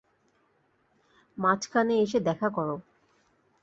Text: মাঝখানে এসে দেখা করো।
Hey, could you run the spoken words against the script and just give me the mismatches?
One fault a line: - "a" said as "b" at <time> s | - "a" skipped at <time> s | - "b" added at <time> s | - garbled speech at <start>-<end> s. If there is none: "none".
none